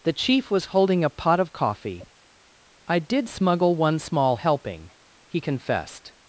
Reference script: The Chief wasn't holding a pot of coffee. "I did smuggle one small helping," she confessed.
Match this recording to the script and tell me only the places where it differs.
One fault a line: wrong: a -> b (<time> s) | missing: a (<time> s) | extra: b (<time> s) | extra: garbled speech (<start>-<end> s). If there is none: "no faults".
wrong: wasn't -> was (0.5 s)
wrong: she -> he (5.3 s)